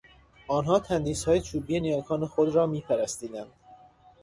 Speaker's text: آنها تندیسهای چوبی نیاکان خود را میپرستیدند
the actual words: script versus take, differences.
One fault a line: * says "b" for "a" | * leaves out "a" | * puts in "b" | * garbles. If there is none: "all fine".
all fine